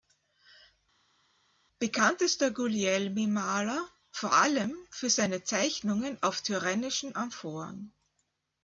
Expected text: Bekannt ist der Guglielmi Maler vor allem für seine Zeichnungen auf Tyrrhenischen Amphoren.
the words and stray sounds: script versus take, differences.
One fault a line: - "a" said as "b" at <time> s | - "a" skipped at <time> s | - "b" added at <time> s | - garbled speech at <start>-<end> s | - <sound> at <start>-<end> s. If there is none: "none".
none